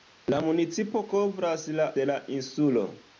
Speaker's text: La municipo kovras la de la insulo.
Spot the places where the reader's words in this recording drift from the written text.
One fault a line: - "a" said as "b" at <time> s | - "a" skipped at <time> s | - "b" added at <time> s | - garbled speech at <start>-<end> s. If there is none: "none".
none